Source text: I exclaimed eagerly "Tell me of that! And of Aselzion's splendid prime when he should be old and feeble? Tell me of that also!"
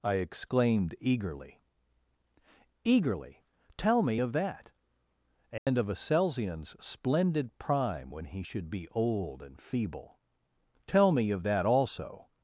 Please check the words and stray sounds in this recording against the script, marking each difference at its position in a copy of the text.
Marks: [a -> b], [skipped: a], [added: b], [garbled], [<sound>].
I exclaimed eagerly [added: eagerly] "Tell me of that! And [dropout] of Aselzion's splendid prime when he should be old and feeble? Tell me of that also!"